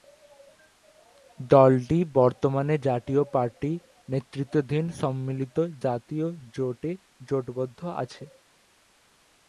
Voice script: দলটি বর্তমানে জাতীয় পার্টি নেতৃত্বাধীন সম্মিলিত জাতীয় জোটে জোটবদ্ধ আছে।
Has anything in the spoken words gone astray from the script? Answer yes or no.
no